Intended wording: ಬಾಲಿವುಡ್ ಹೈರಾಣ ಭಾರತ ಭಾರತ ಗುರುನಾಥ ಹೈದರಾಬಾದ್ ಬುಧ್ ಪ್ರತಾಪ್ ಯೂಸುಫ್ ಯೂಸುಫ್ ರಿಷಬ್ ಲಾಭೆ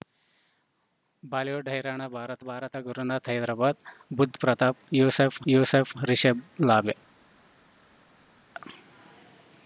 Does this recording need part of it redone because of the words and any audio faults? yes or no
no